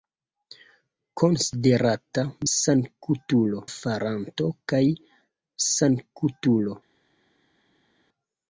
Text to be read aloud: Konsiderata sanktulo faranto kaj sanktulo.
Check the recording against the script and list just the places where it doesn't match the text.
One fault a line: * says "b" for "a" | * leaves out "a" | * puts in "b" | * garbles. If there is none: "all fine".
all fine